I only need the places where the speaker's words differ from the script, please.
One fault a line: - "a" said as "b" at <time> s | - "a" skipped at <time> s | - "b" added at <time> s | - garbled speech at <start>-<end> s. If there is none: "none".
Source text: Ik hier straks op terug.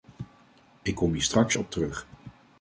- "kom" added at 0.9 s